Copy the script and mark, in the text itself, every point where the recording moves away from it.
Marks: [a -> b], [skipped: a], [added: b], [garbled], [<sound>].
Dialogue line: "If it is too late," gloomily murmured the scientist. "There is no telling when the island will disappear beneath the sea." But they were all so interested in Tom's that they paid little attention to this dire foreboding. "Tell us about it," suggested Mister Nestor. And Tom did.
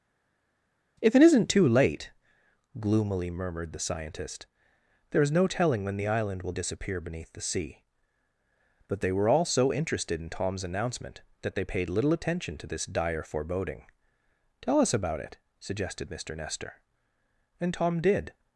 "If it [is -> isn't] too late," gloomily murmured the scientist. "There is no telling when the island will disappear beneath the sea." But they were all so interested in Tom's [added: announcement] that they paid little attention to this dire foreboding. "Tell us about it," suggested Mister Nestor. And Tom did.